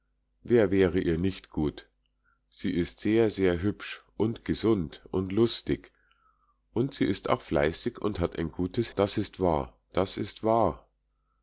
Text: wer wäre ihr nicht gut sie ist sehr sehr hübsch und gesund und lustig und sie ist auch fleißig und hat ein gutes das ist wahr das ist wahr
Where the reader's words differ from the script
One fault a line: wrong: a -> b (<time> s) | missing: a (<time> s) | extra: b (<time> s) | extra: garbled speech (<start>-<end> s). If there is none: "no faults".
no faults